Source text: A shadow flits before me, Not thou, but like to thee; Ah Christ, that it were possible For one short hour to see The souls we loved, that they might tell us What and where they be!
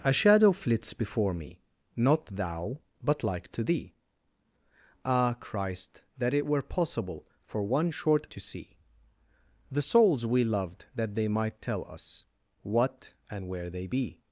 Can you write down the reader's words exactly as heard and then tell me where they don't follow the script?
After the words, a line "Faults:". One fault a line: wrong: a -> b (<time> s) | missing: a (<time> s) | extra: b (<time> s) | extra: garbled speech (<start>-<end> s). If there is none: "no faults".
A shadow flits before me, Not thou, but like to thee; Ah Christ, that it were possible For one short to see The souls we loved, that they might tell us What and where they be!
Faults:
missing: hour (8.3 s)